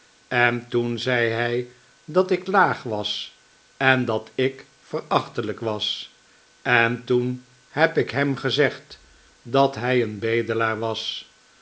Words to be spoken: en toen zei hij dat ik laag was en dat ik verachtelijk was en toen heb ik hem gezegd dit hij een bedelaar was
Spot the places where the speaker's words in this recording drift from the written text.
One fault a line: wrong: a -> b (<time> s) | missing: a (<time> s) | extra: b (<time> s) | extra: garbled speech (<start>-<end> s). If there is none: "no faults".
wrong: dit -> dat (9.4 s)